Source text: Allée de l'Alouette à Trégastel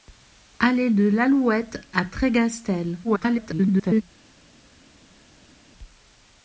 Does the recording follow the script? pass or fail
fail